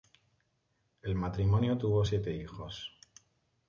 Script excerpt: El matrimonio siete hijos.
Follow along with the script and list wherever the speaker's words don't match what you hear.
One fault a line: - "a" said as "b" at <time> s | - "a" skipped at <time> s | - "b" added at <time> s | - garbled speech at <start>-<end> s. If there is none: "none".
- "tuvo" added at 1.8 s